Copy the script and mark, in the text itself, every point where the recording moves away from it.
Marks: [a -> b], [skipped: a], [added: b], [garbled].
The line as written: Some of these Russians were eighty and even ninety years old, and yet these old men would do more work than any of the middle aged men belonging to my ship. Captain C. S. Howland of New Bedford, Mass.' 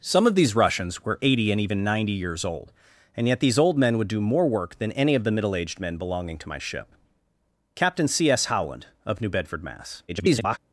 Some of these Russians were eighty and even ninety years old, and yet these old men would do more work than any of the middle aged men belonging to my ship. Captain C. S. Howland of New Bedford, Mass.' [garbled]